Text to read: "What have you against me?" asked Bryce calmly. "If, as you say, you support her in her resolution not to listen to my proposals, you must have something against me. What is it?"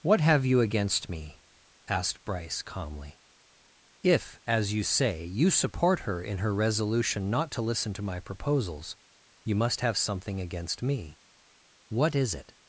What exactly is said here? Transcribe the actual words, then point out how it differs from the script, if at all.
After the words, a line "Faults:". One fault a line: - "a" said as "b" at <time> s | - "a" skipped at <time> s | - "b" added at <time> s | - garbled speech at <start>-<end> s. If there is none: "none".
"What have you against me?" asked Bryce calmly. "If, as you say, you support her in her resolution not to listen to my proposals, you must have something against me. What is it?"
Faults:
none